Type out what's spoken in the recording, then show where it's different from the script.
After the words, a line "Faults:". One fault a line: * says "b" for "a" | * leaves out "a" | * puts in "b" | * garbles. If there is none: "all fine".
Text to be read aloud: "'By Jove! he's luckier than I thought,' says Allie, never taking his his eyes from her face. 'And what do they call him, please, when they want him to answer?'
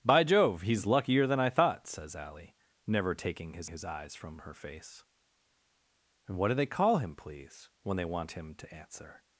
"'By Jove! he's luckier than I thought,' says Allie, never taking his his eyes from her face. 'And what do they call him, please, when they want him to answer?'
Faults:
all fine